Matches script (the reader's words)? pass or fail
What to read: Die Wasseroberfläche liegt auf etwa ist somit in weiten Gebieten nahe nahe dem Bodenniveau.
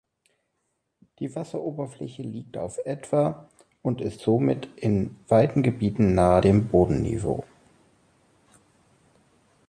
fail